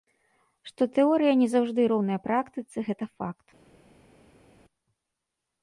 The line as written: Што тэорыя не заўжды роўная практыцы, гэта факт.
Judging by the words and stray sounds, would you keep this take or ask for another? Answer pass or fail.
pass